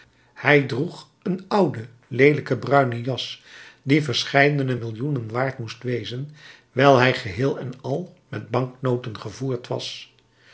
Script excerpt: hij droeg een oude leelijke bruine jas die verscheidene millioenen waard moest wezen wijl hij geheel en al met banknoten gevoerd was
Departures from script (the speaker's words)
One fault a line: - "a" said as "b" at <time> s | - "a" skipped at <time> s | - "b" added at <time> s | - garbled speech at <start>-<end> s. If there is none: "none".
none